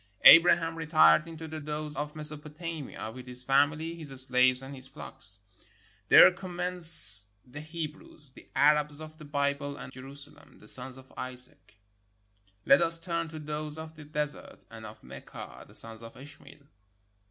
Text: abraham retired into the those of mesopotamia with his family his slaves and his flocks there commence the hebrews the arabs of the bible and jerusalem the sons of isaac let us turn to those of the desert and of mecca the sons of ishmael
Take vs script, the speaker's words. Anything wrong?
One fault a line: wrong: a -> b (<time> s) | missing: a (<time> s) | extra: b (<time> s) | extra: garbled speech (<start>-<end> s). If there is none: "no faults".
no faults